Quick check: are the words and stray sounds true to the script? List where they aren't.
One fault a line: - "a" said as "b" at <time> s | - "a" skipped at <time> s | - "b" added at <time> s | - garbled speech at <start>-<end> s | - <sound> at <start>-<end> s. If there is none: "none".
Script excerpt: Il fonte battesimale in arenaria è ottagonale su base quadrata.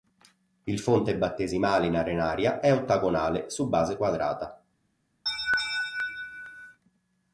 - laugh at 5.3-6.8 s